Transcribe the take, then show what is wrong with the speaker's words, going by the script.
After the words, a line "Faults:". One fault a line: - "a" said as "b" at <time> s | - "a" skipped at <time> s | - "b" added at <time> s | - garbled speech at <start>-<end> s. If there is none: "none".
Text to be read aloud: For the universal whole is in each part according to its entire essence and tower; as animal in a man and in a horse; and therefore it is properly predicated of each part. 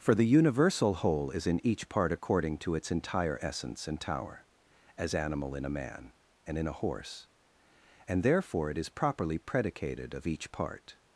For the universal whole is in each part according to its entire essence and tower; as animal in a man and in a horse; and therefore it is properly predicated of each part.
Faults:
none